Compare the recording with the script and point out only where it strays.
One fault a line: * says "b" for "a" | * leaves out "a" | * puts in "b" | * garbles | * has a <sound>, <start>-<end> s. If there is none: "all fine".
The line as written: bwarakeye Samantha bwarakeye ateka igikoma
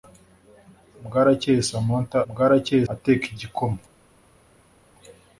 all fine